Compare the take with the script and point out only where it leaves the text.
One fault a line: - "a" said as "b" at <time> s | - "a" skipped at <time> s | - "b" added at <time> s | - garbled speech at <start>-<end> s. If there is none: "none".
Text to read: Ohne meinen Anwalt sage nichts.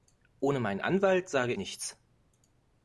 none